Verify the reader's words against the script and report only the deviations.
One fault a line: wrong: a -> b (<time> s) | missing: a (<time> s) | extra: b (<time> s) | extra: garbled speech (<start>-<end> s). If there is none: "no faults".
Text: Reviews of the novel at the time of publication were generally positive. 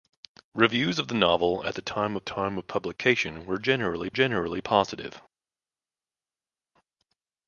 extra: time of (2.2 s)
extra: generally (4.1 s)